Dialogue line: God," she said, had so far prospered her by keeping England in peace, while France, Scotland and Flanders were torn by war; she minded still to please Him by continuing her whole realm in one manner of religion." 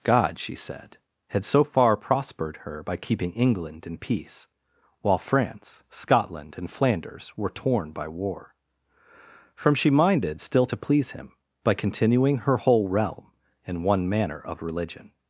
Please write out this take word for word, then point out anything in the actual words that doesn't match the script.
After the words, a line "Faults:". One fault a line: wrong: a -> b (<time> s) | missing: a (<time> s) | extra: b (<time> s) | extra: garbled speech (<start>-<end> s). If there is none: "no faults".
God," she said, had so far prospered her by keeping England in peace, while France, Scotland and Flanders were torn by war; from she minded still to please Him by continuing her whole realm in one manner of religion."
Faults:
extra: from (9.5 s)